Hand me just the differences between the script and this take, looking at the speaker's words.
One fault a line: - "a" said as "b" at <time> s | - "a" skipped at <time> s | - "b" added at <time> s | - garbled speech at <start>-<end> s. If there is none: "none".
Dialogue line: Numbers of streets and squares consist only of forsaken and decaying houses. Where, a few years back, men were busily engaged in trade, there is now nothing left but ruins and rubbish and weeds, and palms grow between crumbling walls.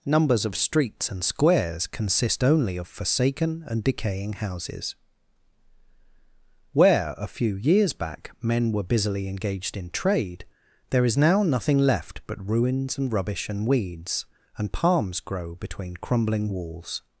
none